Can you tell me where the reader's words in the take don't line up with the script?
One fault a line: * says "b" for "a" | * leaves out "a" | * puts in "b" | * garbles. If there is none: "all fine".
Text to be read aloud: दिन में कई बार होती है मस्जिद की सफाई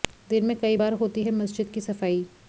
all fine